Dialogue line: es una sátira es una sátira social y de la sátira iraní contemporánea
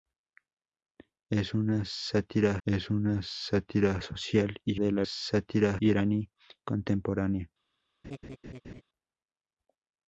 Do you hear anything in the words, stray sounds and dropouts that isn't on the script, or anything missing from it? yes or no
yes